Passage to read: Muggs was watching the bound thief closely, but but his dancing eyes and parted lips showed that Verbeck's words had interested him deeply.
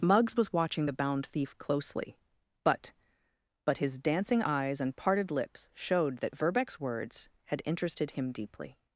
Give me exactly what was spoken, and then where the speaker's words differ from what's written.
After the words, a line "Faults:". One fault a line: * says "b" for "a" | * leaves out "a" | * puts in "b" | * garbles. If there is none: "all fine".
Muggs was watching the bound thief closely, but but his dancing eyes and parted lips showed that Verbeck's words had interested him deeply.
Faults:
all fine